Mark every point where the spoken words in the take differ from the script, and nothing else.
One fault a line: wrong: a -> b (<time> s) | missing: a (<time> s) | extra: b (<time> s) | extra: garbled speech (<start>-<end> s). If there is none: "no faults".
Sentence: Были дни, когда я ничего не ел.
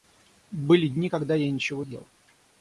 missing: не (1.8 s)